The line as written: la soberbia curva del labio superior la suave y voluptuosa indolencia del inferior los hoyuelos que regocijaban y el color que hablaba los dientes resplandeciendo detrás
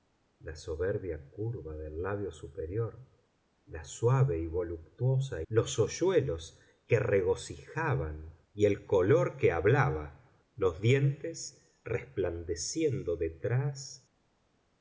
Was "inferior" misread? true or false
true